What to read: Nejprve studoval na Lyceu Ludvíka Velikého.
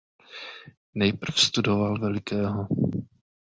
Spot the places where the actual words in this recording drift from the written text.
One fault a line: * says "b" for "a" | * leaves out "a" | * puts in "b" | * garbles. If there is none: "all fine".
* leaves out "na Lyceu Ludvíka"